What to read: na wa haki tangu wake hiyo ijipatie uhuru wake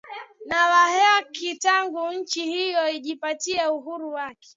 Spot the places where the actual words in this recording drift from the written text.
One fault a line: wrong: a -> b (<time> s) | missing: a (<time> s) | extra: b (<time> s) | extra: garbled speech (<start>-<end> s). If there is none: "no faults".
wrong: wake -> nchi (2.1 s)